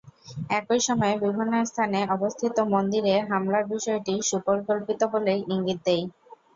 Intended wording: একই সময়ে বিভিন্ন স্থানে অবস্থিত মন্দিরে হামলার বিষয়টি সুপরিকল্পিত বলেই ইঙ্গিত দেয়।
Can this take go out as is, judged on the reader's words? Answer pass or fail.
pass